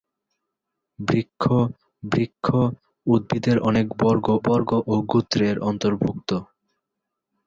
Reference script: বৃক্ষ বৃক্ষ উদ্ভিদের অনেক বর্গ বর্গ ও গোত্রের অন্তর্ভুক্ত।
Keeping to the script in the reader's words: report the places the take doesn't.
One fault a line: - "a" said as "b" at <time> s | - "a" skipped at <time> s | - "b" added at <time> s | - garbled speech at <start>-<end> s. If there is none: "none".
none